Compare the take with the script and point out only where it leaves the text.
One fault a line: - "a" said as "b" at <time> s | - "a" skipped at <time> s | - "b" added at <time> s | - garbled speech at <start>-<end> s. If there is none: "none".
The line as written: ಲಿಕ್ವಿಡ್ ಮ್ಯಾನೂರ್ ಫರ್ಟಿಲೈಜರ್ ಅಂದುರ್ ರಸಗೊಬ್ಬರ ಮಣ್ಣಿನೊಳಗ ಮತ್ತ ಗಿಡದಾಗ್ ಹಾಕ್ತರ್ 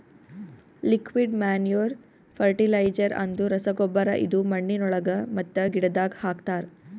- "ಇದು" added at 4.2 s